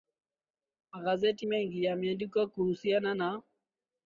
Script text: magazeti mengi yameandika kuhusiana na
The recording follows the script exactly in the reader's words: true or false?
true